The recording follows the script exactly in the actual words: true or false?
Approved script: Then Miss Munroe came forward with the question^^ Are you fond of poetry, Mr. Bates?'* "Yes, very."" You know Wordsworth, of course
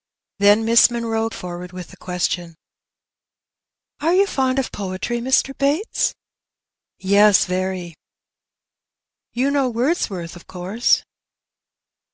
false